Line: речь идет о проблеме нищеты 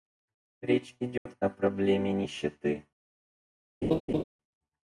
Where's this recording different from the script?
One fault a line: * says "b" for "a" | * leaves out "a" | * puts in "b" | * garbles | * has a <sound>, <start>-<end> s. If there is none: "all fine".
* has a dropout, 1.2-1.3 s
* has a laugh, 3.8-4.2 s